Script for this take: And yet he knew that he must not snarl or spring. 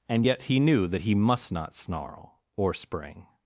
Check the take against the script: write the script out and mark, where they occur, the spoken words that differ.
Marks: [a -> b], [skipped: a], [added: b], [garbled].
And yet he knew that he must not snarl or spring.